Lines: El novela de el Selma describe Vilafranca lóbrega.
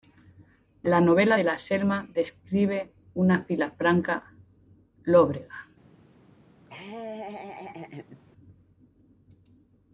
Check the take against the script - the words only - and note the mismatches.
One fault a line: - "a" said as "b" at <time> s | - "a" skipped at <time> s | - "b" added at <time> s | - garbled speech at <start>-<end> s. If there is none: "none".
- "El" said as "La" at 0.8 s
- "el" said as "la" at 1.4 s
- "una" added at 3.1 s